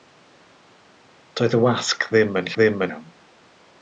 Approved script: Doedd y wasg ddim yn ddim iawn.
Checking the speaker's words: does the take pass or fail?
pass